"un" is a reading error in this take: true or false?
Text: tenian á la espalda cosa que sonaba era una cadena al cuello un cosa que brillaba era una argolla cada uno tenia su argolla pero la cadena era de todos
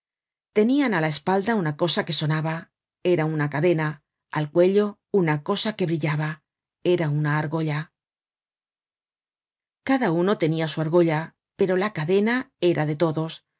true